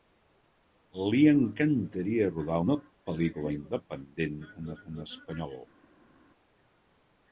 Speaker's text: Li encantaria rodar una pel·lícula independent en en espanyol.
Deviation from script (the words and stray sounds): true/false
false